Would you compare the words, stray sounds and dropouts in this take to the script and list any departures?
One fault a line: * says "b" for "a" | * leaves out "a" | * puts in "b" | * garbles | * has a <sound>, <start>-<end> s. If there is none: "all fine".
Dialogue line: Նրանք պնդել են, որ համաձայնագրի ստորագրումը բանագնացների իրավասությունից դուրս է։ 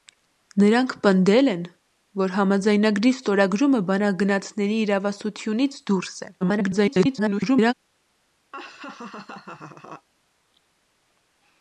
* garbles
* has a laugh, 8.5-10.1 s